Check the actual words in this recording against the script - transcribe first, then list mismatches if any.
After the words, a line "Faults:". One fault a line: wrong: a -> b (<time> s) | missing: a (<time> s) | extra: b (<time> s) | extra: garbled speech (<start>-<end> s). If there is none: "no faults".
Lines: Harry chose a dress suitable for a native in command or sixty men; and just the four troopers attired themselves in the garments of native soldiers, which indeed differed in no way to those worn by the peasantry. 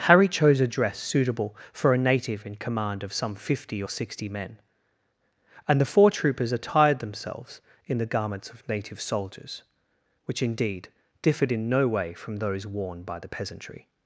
Harry chose a dress suitable for a native in command of some fifty or sixty men; and the four troopers attired themselves in the garments of native soldiers, which indeed differed in no way from those worn by the peasantry.
Faults:
extra: of some fifty (3.0 s)
missing: just (5.8 s)
wrong: to -> from (12.1 s)